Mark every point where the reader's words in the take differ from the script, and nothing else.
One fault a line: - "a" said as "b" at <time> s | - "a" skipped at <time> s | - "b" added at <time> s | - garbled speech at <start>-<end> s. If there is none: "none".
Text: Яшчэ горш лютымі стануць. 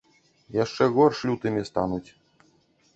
none